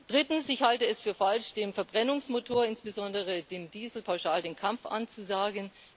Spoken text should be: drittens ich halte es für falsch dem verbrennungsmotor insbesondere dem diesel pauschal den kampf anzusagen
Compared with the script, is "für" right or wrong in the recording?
right